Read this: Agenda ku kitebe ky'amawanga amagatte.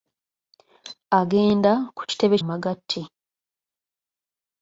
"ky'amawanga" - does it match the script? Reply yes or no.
no